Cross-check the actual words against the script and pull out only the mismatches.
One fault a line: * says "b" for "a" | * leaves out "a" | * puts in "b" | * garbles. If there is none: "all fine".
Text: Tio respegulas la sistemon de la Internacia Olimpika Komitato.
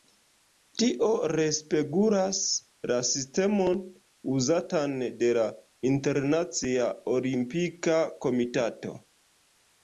* puts in "uzatan"